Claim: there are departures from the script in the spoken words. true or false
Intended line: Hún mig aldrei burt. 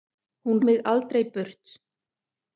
false